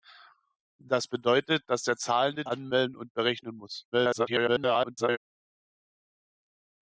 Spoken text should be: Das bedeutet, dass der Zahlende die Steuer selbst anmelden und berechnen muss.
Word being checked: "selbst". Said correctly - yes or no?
no